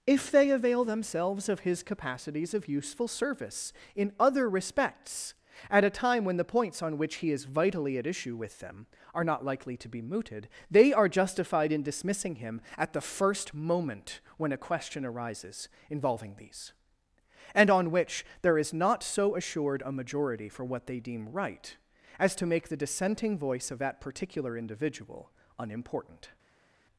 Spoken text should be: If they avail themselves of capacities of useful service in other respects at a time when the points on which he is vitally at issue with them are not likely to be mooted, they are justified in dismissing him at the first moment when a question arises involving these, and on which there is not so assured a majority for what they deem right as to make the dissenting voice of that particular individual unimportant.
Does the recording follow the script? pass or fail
fail